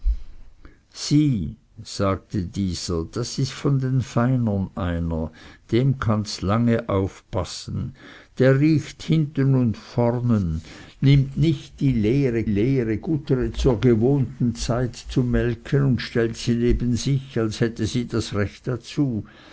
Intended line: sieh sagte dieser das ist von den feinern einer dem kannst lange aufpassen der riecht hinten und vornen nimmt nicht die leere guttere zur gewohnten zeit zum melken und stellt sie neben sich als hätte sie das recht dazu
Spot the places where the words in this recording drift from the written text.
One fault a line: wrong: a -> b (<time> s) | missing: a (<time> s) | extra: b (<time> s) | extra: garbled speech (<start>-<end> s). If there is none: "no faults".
extra: leere (12.4 s)